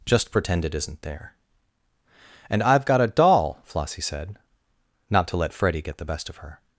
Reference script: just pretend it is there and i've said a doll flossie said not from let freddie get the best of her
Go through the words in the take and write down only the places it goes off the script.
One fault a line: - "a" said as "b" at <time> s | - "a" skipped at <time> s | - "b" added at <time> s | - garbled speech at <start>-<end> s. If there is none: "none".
- "is" said as "isn't" at 0.8 s
- "said" said as "got" at 2.9 s
- "from" said as "to" at 5.3 s